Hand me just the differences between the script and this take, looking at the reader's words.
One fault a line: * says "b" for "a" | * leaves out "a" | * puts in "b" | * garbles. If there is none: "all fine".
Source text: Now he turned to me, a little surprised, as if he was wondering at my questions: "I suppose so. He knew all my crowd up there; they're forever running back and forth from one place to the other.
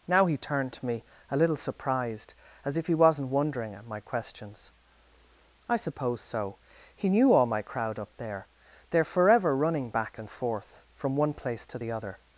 * says "wasn't" for "was"